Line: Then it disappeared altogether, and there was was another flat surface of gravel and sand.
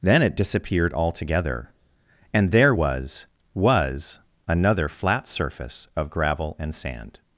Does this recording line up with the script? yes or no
yes